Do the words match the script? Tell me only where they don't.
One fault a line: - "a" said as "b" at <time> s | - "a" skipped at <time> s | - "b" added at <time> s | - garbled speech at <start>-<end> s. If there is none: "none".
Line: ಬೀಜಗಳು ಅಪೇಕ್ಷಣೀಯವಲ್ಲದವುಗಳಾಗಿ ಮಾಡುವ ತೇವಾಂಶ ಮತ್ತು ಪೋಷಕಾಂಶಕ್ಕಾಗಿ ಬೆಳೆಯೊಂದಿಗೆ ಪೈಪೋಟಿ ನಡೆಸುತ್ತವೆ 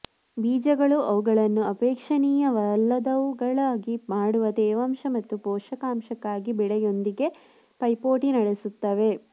- "ಅವುಗಳನ್ನು" added at 1.1 s